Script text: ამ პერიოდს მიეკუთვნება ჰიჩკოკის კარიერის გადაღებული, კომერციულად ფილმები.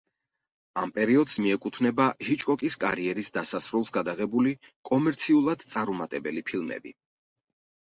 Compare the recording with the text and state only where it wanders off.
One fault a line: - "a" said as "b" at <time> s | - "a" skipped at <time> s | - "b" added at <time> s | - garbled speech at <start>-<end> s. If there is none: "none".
- "დასასრულს" added at 3.4 s
- "წარუმატებელი" added at 5.7 s